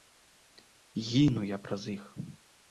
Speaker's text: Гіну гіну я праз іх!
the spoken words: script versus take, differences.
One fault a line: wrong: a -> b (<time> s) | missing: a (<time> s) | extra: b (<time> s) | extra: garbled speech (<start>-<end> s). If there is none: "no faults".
missing: гіну (1.4 s)